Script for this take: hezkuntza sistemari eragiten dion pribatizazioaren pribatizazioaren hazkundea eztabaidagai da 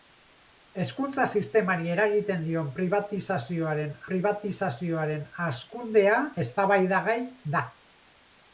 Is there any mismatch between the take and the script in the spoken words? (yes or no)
no